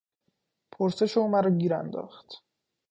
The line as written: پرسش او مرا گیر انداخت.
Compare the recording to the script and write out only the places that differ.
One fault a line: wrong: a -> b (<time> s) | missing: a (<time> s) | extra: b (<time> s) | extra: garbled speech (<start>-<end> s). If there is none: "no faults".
no faults